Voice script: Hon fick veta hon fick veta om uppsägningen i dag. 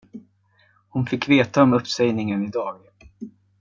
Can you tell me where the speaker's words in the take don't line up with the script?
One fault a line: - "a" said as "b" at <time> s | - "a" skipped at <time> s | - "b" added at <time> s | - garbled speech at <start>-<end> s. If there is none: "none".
- "hon fick veta" skipped at 1.6 s